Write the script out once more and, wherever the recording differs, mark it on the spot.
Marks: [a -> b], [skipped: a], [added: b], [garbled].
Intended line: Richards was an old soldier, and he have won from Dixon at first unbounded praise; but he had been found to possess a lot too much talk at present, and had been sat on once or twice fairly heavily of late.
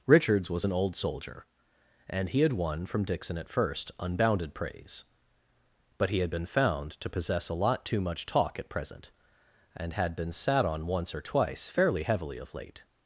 Richards was an old soldier, and he [have -> had] won from Dixon at first unbounded praise; but he had been found to possess a lot too much talk at present, and had been sat on once or twice fairly heavily of late.